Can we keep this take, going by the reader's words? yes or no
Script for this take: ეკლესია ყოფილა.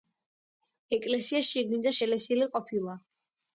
no